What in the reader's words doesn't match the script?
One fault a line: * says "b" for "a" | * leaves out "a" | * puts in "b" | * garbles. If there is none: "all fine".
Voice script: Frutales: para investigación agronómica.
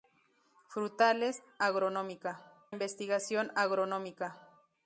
* says "agronómica" for "para"